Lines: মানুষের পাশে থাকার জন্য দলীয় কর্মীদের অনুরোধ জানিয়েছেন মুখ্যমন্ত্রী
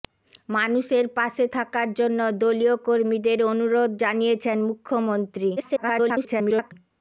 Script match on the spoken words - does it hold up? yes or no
no